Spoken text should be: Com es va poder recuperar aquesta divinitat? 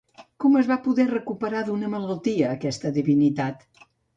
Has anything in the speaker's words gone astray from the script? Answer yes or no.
yes